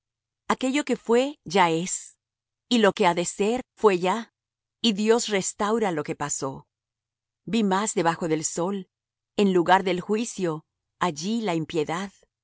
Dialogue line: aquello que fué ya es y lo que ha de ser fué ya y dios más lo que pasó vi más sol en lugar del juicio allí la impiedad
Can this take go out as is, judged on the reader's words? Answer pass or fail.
fail